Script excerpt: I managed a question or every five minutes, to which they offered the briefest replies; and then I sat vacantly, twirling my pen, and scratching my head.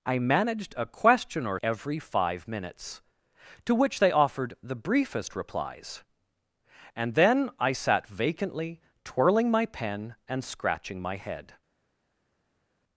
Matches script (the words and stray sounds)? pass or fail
pass